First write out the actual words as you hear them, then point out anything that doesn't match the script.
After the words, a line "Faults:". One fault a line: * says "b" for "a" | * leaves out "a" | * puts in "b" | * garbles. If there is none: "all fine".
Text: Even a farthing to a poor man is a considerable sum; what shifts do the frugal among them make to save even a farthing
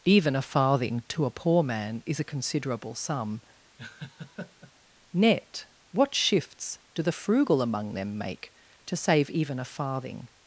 Even a farthing to a poor man is a considerable sum; net what shifts do the frugal among them make to save even a farthing
Faults:
* puts in "net"